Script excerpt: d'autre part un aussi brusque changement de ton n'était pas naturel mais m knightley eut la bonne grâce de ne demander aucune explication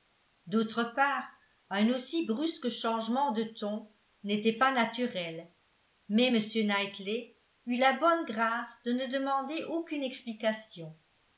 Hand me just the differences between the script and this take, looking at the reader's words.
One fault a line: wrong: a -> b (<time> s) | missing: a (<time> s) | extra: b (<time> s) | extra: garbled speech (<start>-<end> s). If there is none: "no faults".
no faults